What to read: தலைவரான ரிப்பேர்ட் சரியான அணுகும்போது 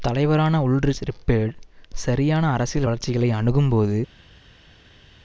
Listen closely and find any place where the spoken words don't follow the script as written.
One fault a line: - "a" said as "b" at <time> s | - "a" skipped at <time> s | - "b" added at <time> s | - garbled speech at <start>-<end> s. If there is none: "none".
- "உல்ரிச்" added at 0.7 s
- "அரசியல் வளர்ச்சிகளை" added at 2.5 s